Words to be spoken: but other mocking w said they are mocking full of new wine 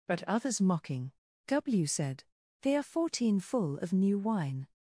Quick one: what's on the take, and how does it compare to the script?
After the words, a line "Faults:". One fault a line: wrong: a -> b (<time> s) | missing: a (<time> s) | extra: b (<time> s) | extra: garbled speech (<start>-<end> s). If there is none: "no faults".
but others mocking w said they are fourteen full of new wine
Faults:
wrong: other -> others (0.2 s)
wrong: mocking -> fourteen (2.8 s)